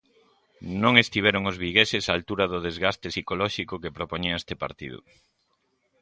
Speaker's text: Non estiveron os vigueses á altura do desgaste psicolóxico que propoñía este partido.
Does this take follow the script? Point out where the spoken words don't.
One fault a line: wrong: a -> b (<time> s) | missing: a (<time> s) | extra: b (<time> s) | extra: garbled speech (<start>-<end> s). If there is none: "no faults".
no faults